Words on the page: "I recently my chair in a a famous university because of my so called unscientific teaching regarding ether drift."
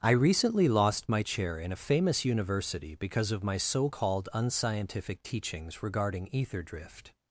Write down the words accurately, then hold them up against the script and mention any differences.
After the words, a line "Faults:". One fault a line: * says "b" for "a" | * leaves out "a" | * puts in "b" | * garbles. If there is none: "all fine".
"I recently lost my chair in a famous university because of my so called unscientific teachings regarding ether drift."
Faults:
* puts in "lost"
* leaves out "a"
* says "teachings" for "teaching"